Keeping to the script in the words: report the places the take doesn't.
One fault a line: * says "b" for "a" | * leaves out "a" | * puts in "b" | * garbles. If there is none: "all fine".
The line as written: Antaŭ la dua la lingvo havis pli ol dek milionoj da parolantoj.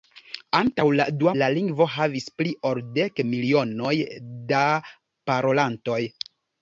all fine